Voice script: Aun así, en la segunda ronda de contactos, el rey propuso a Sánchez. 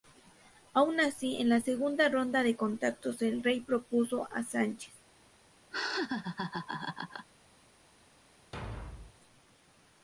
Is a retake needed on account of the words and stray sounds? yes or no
yes